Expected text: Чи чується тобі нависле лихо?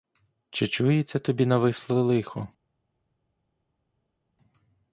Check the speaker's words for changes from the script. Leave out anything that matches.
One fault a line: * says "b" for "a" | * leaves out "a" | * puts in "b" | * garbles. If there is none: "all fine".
all fine